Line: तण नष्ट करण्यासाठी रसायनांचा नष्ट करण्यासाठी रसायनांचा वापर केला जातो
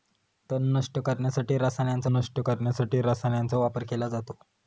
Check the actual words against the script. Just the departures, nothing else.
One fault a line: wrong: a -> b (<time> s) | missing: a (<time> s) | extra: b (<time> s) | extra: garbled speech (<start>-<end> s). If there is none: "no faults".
no faults